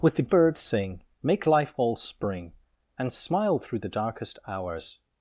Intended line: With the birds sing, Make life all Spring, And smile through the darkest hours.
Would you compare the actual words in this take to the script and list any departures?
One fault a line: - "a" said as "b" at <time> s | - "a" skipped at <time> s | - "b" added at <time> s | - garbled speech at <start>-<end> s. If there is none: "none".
none